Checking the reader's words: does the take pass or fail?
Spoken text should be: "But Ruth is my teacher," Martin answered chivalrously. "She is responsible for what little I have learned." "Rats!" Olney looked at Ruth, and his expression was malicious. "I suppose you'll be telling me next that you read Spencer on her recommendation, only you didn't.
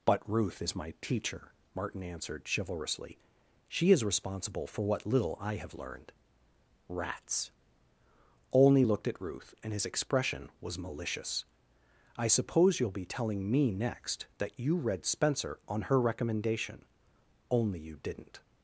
pass